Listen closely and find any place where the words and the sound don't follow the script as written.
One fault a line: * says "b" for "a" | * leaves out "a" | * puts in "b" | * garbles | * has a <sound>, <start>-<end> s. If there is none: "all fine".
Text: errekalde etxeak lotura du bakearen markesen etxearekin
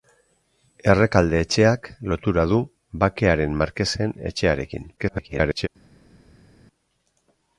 * garbles